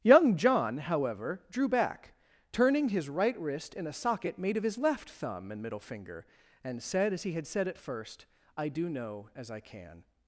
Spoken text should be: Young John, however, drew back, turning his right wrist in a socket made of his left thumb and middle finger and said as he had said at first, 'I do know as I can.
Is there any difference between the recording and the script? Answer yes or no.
no